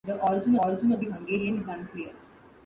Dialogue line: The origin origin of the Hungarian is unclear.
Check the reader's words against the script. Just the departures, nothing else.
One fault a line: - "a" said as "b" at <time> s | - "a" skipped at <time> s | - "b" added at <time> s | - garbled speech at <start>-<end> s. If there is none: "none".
none